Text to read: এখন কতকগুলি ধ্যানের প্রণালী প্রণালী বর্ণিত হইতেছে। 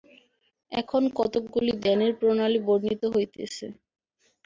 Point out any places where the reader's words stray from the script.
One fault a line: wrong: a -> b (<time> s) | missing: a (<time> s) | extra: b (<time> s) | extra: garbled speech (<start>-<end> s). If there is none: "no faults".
missing: প্রণালী (2.6 s)